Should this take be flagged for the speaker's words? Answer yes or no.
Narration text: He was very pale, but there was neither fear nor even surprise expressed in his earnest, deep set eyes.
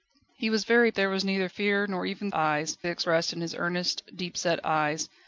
yes